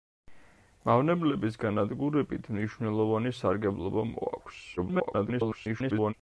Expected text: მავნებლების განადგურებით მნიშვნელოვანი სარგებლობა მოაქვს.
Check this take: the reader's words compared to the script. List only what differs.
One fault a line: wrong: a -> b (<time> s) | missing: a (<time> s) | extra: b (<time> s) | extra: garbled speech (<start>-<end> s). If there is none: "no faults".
extra: garbled speech (4.8-6.1 s)